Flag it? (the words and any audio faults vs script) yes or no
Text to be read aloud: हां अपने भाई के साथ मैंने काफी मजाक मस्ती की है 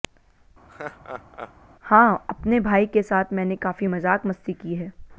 yes